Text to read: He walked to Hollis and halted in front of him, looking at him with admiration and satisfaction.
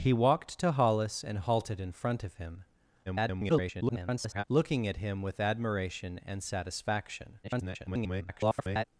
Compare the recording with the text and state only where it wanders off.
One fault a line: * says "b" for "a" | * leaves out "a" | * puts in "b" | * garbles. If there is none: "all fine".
* garbles
* garbles